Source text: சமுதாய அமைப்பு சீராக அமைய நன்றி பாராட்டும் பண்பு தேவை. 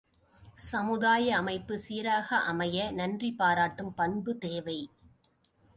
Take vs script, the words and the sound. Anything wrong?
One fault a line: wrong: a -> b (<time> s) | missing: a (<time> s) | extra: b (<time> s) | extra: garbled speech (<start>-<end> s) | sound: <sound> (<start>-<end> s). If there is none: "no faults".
no faults